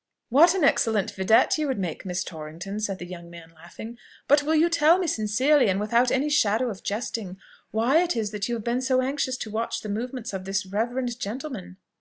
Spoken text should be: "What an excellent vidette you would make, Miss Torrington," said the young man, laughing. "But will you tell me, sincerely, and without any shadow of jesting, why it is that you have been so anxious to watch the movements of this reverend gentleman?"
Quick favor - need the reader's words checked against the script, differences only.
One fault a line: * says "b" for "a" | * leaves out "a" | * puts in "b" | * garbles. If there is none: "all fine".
all fine